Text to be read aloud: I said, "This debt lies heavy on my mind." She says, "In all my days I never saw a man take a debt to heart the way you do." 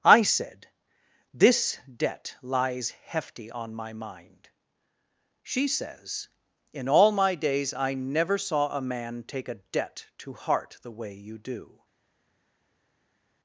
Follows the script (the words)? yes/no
no